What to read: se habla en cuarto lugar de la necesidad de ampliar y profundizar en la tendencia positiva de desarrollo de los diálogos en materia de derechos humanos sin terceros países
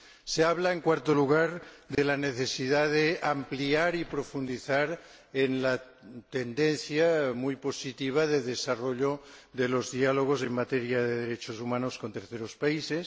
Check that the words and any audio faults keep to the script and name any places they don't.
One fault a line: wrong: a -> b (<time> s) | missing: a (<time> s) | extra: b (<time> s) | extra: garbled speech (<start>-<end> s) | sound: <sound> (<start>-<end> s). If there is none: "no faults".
sound: dropout (1.9-2.0 s)
extra: muy (7.3 s)
wrong: sin -> con (12.0 s)